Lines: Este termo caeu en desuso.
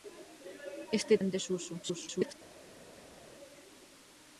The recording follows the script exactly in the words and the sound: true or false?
false